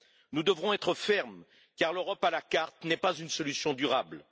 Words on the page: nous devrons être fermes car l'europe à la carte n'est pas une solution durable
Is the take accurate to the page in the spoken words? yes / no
yes